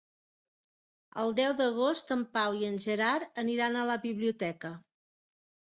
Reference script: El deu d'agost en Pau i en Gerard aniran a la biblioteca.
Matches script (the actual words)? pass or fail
pass